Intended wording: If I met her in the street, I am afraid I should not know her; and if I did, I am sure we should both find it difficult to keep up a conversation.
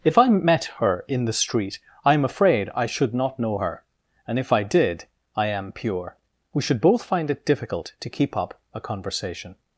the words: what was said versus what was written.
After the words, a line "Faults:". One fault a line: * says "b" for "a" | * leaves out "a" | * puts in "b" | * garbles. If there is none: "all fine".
If I met her in the street, I am afraid I should not know her; and if I did, I am pure we should both find it difficult to keep up a conversation.
Faults:
* says "pure" for "sure"